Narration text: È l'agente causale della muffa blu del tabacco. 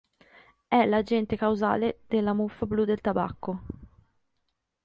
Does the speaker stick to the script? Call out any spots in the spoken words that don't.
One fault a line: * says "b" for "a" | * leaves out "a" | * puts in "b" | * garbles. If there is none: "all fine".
all fine